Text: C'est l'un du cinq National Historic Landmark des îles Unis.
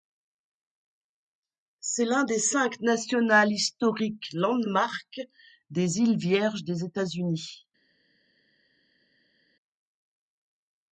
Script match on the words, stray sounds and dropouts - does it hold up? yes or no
no